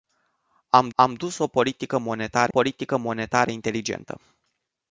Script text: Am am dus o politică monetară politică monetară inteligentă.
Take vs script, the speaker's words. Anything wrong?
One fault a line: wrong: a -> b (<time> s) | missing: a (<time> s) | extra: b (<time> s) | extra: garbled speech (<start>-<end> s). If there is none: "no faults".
no faults